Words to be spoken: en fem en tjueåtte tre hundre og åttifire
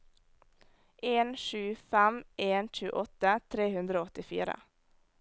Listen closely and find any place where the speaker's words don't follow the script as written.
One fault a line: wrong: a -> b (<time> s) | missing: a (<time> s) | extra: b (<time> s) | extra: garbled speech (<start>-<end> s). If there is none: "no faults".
extra: sju (1.4 s)